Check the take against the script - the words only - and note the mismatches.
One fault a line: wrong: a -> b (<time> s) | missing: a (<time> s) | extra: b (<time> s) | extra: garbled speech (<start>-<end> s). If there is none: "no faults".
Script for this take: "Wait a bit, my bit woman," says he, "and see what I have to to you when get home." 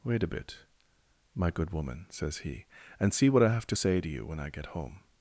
wrong: bit -> good (1.5 s)
extra: say (3.7 s)
extra: I (4.4 s)